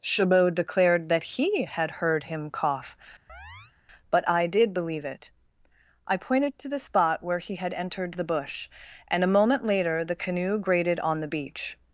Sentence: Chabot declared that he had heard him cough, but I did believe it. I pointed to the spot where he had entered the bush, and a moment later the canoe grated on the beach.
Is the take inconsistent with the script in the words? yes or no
no